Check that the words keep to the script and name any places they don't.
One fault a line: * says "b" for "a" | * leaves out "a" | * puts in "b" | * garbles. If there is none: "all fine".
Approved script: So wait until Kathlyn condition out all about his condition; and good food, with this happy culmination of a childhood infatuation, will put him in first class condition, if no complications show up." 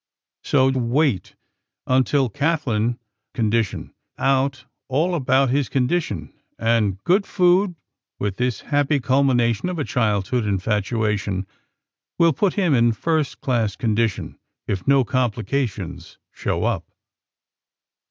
all fine